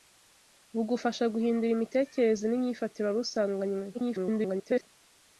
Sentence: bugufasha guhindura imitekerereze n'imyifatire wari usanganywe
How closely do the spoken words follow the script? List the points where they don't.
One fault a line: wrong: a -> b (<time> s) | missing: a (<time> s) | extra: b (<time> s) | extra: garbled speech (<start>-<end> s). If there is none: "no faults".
extra: garbled speech (3.9-4.9 s)